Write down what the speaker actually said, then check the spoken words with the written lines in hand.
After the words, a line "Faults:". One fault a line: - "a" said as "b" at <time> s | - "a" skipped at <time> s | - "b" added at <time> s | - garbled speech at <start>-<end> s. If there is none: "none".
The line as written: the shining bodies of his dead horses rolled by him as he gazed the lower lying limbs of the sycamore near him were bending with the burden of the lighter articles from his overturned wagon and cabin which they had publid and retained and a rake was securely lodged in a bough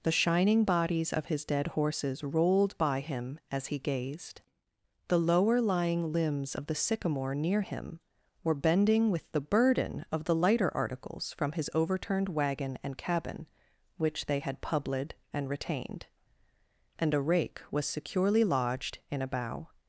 the shining bodies of his dead horses rolled by him as he gazed the lower lying limbs of the sycamore near him were bending with the burden of the lighter articles from his overturned wagon and cabin which they had publid and retained and a rake was securely lodged in a bough
Faults:
none